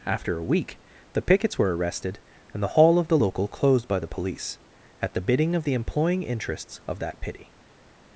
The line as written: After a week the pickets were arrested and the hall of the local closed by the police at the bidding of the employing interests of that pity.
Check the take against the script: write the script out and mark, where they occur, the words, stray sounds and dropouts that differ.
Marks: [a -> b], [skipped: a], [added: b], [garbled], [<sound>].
After a week the pickets were arrested and the hall of the local closed by the police at the bidding of the employing interests of that pity.